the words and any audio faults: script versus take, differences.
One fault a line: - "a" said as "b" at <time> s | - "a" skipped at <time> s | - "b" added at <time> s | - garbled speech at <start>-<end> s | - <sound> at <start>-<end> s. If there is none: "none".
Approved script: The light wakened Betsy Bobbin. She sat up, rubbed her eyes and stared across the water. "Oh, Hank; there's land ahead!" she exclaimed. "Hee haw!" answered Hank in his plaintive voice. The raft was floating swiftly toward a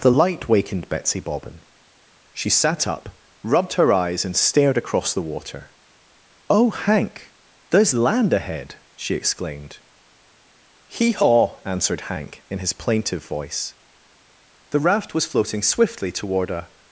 none